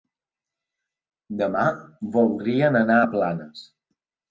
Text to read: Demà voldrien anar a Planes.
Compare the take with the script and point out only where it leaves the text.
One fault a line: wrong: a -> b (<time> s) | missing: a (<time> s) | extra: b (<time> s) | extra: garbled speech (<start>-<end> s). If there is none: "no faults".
no faults